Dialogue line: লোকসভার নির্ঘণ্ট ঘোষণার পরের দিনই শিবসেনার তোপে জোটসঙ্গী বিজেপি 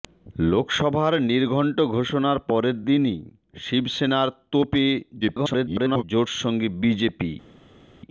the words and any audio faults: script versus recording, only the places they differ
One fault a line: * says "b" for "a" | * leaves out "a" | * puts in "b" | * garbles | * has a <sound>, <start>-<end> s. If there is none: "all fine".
* garbles